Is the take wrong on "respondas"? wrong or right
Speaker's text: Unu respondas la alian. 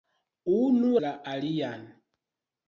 wrong